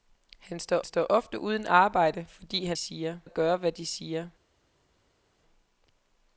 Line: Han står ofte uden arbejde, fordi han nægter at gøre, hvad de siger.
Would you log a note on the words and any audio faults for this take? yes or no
yes